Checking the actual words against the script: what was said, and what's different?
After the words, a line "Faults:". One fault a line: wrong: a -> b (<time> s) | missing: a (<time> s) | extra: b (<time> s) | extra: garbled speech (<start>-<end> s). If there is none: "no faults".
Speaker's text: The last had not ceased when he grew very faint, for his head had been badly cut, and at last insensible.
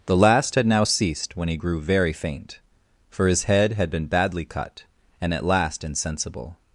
The last had now ceased when he grew very faint, for his head had been badly cut, and at last insensible.
Faults:
wrong: not -> now (0.7 s)